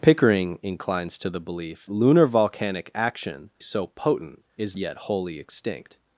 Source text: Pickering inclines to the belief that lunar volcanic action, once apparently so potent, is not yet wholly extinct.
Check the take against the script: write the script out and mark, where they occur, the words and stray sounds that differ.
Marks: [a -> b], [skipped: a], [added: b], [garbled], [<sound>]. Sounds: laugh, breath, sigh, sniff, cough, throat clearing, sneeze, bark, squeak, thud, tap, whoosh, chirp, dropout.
Pickering inclines to the belief [skipped: that] lunar volcanic action, [skipped: once apparently] so potent, is [skipped: not] yet wholly extinct.